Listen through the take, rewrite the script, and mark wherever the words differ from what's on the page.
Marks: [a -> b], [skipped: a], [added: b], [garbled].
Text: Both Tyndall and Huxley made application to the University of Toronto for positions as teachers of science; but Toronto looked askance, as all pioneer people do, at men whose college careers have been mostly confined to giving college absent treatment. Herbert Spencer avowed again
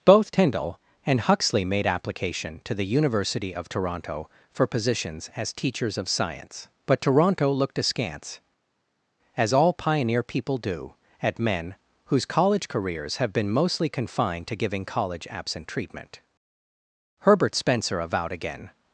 Both Tyndall and Huxley made application to the University of Toronto for positions as teachers of science; but Toronto looked askance, as all pioneer people do, at men whose college careers have been mostly confined to giving college absent treatment. Herbert Spencer avowed again